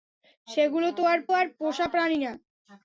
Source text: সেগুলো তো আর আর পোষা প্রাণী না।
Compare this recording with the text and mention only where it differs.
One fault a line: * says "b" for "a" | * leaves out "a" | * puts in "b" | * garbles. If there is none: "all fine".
all fine